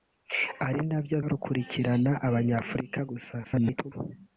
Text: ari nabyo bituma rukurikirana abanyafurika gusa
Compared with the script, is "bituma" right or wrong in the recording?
wrong